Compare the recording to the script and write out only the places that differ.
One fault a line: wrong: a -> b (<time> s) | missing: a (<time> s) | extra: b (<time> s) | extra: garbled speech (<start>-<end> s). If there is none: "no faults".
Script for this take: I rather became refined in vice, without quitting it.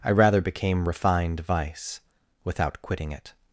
missing: in (1.4 s)